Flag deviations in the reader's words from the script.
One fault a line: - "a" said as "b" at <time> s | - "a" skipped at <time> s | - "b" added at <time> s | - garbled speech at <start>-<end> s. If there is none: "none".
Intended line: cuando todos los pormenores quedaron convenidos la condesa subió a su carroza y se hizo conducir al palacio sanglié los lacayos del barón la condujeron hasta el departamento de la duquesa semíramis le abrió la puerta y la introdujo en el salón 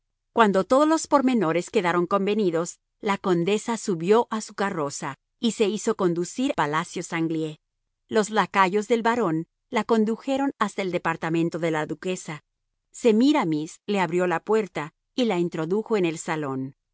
- "al" skipped at 6.5 s